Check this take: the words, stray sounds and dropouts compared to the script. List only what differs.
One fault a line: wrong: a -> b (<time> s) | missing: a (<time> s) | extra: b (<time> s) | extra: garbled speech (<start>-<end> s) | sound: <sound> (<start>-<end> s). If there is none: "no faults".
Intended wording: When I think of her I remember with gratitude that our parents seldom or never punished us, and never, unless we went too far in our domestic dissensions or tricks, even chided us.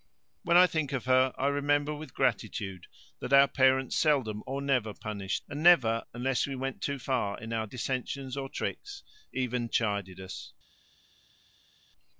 missing: us (5.5 s)
missing: domestic (7.7 s)